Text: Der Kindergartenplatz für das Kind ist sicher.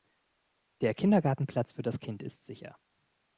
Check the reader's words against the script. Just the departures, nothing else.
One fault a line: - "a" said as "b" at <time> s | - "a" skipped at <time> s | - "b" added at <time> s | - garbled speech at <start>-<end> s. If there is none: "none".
none